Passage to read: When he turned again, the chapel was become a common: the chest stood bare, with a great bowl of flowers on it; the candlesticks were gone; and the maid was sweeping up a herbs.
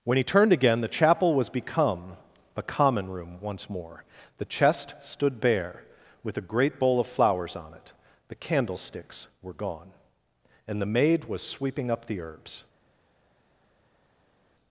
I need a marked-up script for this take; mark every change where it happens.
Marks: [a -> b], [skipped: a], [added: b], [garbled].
When he turned again, the chapel was become a common: [added: room once more] the chest stood bare, with a great bowl of flowers on it; the candlesticks were gone; and the maid was sweeping up [a -> the] herbs.